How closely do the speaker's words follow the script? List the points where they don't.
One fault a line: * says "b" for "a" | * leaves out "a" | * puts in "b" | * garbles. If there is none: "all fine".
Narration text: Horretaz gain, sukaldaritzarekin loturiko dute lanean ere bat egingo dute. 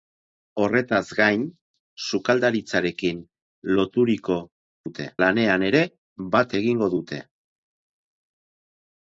all fine